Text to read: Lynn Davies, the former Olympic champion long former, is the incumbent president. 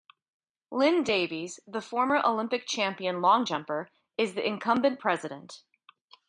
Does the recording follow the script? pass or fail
fail